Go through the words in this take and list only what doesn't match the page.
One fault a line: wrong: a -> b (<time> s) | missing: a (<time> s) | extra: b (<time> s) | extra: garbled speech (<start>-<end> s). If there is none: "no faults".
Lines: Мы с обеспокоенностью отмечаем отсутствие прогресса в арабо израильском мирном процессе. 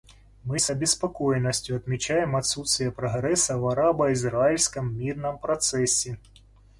no faults